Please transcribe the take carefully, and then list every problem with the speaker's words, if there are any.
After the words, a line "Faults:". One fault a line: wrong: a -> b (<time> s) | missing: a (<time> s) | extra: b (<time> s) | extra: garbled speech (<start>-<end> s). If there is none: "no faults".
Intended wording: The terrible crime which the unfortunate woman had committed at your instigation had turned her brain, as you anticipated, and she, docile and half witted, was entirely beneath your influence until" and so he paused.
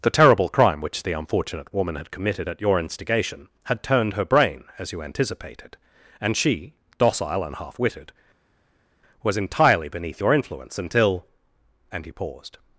The terrible crime which the unfortunate woman had committed at your instigation had turned her brain, as you anticipated, and she, docile and half witted, was entirely beneath your influence until" and he paused.
Faults:
missing: so (12.1 s)